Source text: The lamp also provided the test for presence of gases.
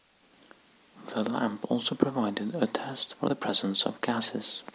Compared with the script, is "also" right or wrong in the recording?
right